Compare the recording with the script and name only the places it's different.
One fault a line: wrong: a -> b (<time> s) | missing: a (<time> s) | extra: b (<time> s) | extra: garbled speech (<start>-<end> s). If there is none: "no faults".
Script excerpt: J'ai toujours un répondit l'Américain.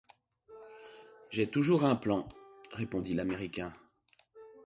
extra: plan (1.9 s)